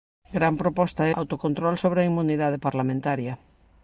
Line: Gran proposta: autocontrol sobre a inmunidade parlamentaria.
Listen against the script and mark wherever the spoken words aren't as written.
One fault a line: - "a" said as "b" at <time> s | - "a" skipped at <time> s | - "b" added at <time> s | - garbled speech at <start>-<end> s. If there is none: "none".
none